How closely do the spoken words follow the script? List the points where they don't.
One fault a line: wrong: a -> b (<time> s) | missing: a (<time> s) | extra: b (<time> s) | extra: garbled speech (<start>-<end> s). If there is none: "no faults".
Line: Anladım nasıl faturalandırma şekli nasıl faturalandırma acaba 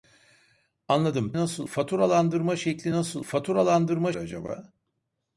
no faults